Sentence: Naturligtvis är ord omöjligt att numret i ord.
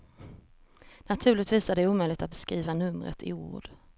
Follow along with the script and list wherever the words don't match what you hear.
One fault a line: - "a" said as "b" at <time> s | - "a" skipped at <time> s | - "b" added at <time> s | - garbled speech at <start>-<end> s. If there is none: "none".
- "ord" said as "det" at 1.8 s
- "beskriva" added at 2.3 s